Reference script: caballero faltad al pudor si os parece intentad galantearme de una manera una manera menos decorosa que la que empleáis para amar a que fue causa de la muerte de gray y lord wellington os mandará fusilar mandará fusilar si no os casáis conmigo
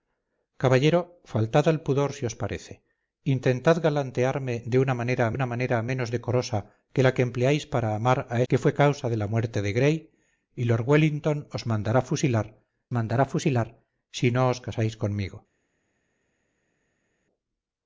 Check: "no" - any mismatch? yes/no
no